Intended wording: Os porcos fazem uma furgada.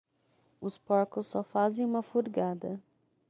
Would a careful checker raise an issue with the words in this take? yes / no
yes